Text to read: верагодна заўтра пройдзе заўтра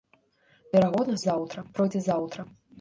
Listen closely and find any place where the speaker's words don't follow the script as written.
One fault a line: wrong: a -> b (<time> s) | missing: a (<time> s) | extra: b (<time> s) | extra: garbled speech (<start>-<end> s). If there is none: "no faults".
no faults